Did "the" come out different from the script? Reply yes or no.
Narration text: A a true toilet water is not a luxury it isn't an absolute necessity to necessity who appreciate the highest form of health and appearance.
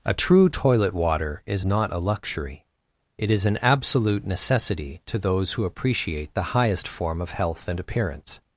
no